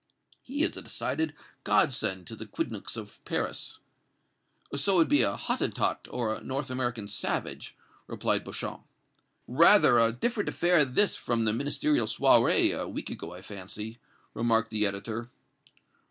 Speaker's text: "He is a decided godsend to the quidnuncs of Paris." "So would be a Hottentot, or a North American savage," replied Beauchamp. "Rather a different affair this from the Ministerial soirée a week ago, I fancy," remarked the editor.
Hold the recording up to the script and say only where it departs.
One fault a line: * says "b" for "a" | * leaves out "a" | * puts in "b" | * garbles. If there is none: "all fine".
all fine